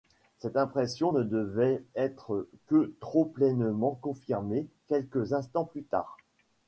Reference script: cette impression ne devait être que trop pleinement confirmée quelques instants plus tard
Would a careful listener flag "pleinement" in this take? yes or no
no